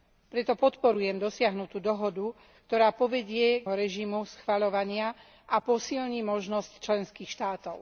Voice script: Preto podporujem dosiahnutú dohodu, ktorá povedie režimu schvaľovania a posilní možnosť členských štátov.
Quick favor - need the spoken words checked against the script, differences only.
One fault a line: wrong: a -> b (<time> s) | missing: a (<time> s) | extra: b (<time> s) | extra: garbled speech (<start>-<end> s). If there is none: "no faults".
no faults